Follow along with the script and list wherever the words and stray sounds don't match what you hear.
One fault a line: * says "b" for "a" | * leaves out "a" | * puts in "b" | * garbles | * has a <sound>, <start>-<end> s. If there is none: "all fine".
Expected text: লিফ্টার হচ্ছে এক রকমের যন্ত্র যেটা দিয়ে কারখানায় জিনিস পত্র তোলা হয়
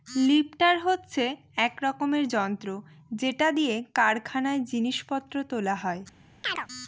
* has a chirp, 6.4-6.7 s